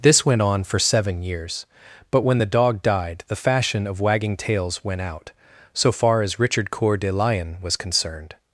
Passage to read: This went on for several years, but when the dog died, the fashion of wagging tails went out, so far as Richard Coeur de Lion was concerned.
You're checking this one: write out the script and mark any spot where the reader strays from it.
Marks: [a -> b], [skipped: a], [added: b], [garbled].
This went on for [several -> seven] years, but when the dog died, the fashion of wagging tails went out, so far as Richard Coeur de Lion was concerned.